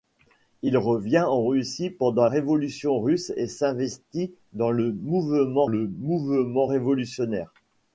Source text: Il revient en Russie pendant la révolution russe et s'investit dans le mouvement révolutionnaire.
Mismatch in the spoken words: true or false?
true